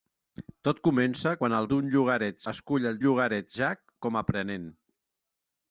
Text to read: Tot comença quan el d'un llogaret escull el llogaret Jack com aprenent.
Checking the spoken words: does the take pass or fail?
pass